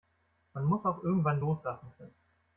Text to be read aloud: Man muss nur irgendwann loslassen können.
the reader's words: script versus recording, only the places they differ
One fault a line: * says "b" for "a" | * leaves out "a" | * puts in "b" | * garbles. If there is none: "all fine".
* says "auch" for "nur"